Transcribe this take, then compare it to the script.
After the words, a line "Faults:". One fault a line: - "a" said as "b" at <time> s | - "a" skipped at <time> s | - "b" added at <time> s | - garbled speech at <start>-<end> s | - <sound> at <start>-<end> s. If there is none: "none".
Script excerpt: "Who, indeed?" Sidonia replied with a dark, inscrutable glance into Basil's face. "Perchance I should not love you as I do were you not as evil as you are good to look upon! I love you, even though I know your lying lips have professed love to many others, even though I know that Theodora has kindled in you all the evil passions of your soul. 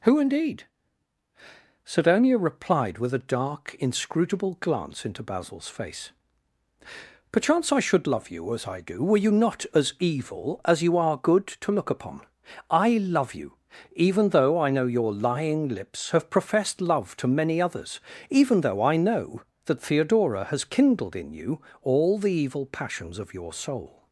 "Who, indeed?" Sidonia replied with a dark, inscrutable glance into Basil's face. "Perchance I should love you as I do were you not as evil as you are good to look upon! I love you, even though I know your lying lips have professed love to many others, even though I know that Theodora has kindled in you all the evil passions of your soul.
Faults:
- "not" skipped at 8.1 s